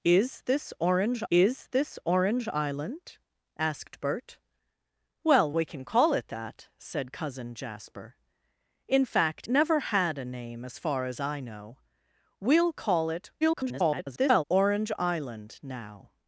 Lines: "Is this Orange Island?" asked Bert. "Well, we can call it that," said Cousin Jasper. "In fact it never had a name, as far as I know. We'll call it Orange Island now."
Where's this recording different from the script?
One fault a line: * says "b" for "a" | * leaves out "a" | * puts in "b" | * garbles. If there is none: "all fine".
* puts in "is this Orange"
* leaves out "it"
* garbles